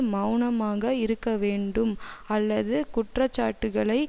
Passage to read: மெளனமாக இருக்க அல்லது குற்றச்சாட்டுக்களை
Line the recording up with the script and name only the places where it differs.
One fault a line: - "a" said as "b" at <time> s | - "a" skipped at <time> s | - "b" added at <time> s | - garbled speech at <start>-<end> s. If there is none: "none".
- "வேண்டும்" added at 1.4 s